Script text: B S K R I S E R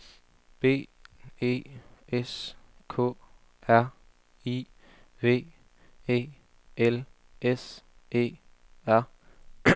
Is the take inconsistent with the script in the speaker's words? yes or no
yes